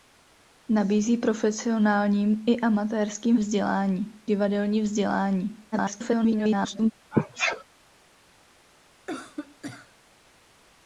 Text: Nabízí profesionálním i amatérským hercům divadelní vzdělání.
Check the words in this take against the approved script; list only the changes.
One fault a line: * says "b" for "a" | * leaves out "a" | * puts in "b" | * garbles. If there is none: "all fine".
* says "vzdělání" for "hercům"
* garbles